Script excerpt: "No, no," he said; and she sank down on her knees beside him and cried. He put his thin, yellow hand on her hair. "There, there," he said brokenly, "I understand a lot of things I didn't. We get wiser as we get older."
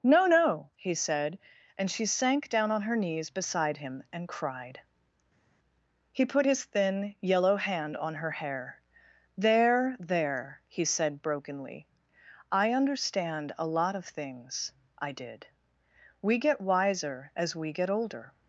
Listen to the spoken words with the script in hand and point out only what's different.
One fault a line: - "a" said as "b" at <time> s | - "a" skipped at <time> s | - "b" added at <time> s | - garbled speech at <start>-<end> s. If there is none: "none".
- "didn't" said as "did" at 15.1 s